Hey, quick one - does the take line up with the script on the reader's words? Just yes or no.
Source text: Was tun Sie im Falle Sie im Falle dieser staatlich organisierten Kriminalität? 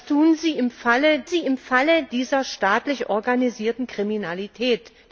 yes